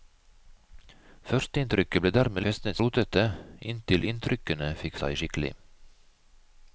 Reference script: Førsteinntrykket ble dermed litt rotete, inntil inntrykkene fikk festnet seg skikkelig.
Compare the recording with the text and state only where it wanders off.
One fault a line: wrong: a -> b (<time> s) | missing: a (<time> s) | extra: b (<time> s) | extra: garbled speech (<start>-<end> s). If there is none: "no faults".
wrong: litt -> festnet (2.5 s)
missing: festnet (5.0 s)